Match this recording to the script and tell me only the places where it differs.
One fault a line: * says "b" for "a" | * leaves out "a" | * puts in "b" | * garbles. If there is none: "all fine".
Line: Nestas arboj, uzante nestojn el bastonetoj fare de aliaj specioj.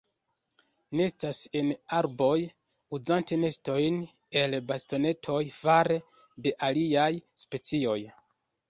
* puts in "en"